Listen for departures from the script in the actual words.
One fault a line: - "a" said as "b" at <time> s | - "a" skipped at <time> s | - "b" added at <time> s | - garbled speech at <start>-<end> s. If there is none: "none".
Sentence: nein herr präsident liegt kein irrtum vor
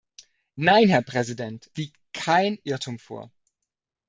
none